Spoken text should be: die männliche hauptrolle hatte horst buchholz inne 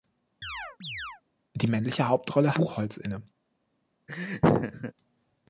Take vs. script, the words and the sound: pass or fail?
fail